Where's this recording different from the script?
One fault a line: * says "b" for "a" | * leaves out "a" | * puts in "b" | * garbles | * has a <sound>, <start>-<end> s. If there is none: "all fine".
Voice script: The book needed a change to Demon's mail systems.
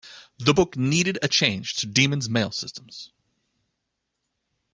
all fine